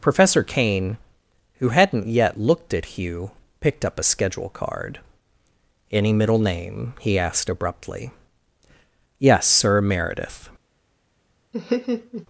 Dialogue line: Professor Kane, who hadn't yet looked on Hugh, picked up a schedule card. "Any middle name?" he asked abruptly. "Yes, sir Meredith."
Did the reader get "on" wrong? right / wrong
wrong